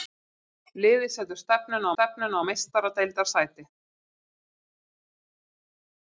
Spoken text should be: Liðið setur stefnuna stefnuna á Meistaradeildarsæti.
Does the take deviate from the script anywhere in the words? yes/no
no